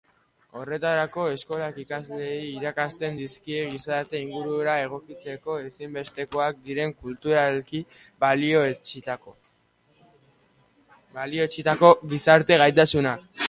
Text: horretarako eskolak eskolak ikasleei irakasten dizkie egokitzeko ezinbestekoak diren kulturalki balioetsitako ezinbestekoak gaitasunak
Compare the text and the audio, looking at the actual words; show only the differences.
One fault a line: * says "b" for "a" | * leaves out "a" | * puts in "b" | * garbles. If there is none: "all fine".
* leaves out "eskolak"
* puts in "gizarte ingurura"
* says "gizarte" for "ezinbestekoak"